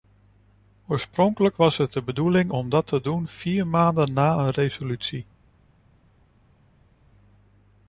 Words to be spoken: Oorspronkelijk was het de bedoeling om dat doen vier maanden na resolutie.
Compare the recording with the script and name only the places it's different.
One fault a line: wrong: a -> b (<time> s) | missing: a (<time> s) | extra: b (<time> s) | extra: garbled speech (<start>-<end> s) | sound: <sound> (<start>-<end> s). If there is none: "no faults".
extra: te (2.9 s)
extra: een (4.4 s)